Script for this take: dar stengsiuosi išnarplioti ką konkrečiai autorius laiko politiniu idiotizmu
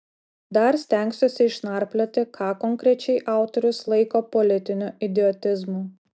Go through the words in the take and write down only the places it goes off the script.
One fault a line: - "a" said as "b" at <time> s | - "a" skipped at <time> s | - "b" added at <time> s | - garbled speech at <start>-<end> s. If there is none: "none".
none